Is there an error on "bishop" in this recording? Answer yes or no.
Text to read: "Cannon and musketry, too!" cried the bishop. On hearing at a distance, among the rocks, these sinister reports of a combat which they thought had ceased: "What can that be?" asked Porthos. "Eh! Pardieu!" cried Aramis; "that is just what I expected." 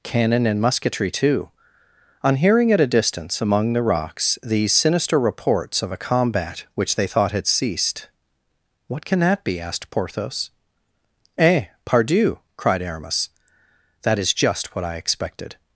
yes